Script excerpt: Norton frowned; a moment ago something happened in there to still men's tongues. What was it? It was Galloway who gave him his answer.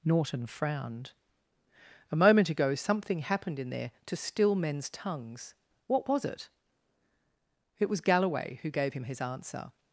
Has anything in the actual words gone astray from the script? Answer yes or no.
no